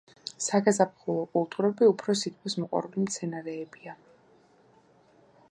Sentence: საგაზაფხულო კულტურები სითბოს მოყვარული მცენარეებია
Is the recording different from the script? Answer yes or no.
yes